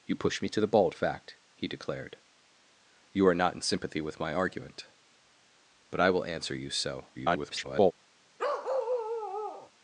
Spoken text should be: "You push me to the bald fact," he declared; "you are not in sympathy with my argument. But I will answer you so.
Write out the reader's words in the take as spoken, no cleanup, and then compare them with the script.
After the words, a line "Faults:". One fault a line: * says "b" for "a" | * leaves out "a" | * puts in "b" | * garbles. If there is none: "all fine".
"You push me to the bald fact," he declared; "you are not in sympathy with my argument. But I will answer you so. [garbled]
Faults:
* garbles